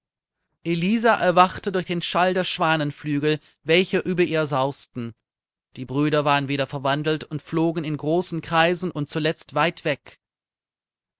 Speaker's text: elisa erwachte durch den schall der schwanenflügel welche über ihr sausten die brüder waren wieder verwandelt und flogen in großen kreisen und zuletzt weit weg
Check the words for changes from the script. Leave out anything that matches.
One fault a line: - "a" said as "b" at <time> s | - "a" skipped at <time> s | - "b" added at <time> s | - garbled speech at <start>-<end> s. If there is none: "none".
none